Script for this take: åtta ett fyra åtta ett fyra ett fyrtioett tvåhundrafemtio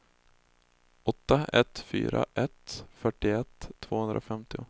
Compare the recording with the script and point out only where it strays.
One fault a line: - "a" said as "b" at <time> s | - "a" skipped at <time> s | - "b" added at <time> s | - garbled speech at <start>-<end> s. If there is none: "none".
- "åtta ett fyra" skipped at 2.3 s